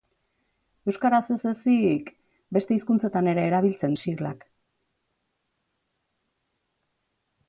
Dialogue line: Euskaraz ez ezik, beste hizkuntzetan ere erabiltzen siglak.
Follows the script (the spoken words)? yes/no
yes